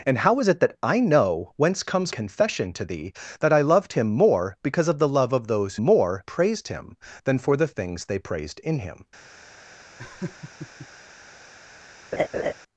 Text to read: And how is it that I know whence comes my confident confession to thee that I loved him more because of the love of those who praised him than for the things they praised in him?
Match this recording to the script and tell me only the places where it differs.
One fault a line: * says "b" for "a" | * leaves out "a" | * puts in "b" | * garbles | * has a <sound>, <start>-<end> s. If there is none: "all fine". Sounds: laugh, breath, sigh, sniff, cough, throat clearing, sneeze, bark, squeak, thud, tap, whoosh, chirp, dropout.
* leaves out "my confident"
* says "more" for "who"
* has a laugh, 10.0-10.9 s
* has a laugh, 12.1-12.5 s